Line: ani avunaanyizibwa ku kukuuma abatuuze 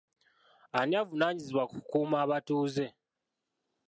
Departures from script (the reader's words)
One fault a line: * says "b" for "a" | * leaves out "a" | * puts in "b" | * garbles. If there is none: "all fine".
all fine